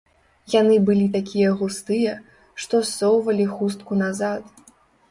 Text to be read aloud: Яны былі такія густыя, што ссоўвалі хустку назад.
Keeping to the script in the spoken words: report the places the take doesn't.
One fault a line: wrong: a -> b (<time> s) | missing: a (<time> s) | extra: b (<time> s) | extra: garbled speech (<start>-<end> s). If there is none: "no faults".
no faults